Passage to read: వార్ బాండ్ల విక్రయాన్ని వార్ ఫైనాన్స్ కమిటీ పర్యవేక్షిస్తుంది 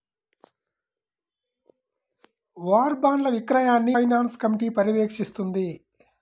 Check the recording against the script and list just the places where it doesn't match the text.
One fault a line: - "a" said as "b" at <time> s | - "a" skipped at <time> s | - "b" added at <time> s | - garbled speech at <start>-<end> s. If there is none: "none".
- "వార్" skipped at 4.0 s